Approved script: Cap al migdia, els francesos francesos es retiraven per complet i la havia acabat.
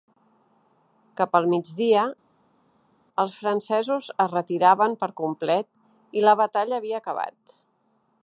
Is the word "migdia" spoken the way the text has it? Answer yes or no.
yes